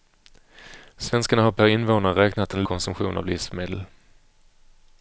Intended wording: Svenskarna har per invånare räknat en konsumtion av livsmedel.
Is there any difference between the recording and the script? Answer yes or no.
no